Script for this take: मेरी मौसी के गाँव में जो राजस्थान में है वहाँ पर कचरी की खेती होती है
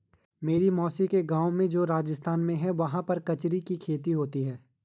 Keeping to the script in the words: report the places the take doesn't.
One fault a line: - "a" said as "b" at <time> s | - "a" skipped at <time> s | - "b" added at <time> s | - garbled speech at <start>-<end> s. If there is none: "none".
none